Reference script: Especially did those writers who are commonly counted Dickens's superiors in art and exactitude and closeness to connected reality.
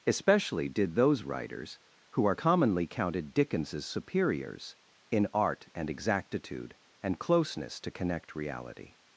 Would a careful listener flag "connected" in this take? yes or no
yes